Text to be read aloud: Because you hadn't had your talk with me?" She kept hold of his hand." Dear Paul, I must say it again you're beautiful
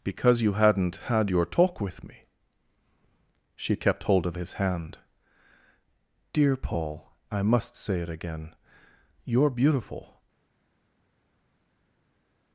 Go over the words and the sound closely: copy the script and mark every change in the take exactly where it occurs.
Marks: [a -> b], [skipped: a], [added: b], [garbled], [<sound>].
Because you hadn't had your talk with me?" She kept hold of his hand." Dear Paul, I must say it again you're beautiful